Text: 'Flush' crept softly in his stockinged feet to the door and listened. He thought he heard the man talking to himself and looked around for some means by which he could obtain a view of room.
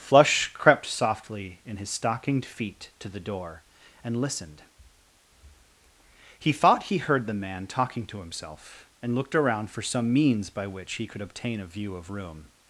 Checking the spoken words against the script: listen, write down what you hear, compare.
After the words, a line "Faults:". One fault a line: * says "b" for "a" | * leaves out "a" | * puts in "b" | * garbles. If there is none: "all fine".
'Flush' crept softly in his stockinged feet to the door and listened. He thought he heard the man talking to himself and looked around for some means by which he could obtain a view of room.
Faults:
all fine